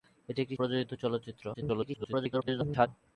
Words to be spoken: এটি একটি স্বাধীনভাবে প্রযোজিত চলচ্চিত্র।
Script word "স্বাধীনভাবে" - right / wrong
wrong